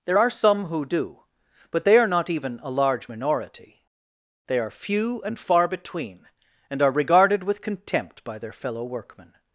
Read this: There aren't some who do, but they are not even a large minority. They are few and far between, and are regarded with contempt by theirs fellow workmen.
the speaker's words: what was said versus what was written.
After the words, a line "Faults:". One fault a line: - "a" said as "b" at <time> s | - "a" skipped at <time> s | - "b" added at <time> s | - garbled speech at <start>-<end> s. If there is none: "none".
There are some who do, but they are not even a large minority. They are few and far between, and are regarded with contempt by their fellow workmen.
Faults:
- "aren't" said as "are" at 0.2 s
- "theirs" said as "their" at 8.4 s